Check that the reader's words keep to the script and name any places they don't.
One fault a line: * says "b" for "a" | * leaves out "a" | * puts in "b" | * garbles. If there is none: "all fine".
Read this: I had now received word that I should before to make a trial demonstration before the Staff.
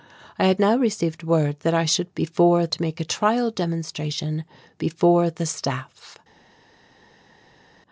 all fine